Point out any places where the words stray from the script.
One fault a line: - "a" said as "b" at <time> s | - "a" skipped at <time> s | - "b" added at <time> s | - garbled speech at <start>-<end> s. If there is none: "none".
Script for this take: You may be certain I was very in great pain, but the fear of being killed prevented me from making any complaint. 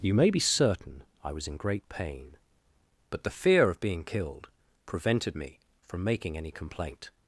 - "very" skipped at 1.5 s